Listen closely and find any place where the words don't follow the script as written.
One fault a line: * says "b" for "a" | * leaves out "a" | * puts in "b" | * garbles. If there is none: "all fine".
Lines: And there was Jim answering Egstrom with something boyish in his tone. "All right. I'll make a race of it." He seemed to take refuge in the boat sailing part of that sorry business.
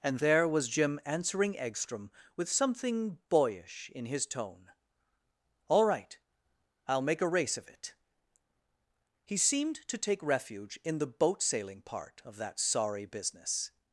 all fine